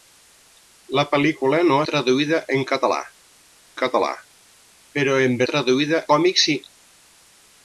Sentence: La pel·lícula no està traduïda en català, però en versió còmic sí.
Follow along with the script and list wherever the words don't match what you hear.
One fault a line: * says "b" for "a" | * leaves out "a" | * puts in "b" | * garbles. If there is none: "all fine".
* leaves out "està"
* puts in "català"
* says "traduïda" for "versió"